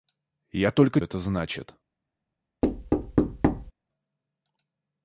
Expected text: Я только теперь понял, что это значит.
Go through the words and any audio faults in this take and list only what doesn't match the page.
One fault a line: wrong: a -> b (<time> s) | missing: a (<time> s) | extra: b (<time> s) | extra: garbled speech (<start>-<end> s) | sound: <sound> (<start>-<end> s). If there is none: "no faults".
missing: теперь понял что (1.0 s)
sound: thud (2.6-3.7 s)